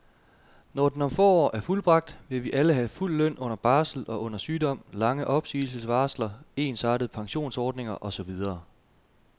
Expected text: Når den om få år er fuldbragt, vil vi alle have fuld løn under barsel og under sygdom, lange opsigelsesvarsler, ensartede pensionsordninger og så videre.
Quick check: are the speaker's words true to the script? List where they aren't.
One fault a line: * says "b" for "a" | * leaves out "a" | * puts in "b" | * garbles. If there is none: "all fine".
all fine